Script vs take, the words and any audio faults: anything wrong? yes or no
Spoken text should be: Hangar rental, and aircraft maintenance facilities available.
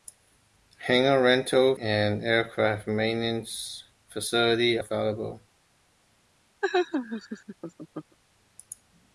yes